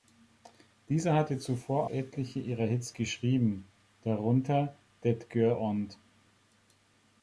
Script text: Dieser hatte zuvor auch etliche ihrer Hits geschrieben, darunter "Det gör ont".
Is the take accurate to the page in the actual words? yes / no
no